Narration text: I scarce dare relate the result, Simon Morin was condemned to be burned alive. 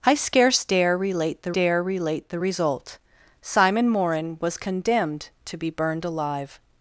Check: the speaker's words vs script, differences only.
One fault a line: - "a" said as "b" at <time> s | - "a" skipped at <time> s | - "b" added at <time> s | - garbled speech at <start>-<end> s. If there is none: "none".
- "dare relate the" added at 1.5 s